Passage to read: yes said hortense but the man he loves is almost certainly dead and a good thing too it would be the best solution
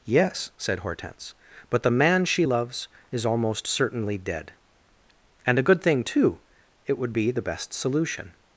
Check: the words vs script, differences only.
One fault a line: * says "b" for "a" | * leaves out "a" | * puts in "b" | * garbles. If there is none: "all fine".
* says "she" for "he"